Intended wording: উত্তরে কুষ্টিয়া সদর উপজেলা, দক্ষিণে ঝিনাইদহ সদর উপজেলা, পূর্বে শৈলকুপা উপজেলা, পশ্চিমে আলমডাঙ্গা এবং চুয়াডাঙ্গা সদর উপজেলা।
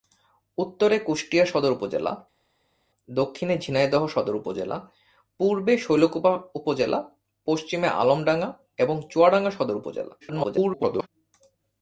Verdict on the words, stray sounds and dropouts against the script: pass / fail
fail